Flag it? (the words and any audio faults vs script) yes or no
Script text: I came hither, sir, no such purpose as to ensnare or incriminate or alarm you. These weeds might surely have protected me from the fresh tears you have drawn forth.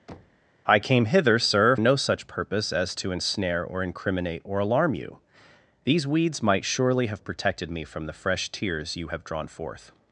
yes